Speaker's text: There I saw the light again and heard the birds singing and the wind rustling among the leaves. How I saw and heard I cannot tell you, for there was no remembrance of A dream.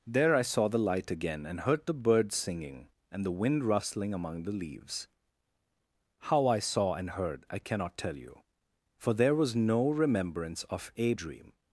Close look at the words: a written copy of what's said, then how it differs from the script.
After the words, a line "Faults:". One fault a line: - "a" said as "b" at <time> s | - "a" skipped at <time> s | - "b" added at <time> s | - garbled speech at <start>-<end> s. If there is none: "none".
There I saw the light again and heard the birds singing and the wind rustling among the leaves. How I saw and heard I cannot tell you, for there was no remembrance of A dream.
Faults:
none